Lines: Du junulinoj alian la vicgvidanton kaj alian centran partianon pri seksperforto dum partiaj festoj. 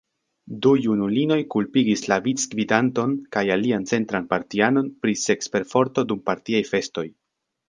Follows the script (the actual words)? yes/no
no